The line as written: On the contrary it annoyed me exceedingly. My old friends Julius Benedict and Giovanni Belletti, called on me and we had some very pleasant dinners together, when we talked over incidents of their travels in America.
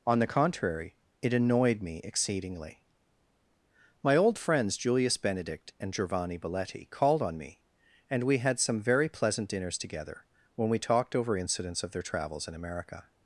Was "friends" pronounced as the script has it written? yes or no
yes